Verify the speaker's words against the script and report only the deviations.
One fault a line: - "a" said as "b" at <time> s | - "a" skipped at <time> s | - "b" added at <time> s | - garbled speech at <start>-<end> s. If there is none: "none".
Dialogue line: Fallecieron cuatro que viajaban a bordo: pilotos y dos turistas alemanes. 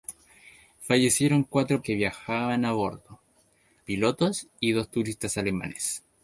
none